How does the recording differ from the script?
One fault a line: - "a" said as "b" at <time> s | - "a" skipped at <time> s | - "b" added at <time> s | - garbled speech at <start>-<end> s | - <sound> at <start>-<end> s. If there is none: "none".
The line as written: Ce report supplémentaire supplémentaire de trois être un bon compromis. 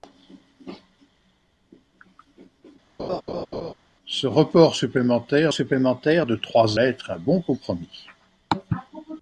- laugh at 3.0-3.7 s